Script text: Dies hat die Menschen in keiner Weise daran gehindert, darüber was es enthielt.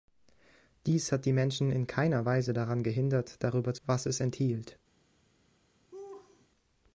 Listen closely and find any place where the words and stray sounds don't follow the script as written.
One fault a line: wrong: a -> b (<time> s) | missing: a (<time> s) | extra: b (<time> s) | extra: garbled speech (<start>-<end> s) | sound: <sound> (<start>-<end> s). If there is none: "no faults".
sound: laugh (5.9-6.5 s)